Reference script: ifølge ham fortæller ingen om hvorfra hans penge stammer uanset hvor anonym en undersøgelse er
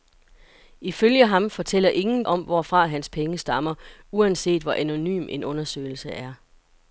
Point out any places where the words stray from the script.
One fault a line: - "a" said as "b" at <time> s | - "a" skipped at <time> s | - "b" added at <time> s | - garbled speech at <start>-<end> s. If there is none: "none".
none